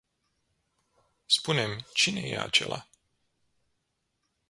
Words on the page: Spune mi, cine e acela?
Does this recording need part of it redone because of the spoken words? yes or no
no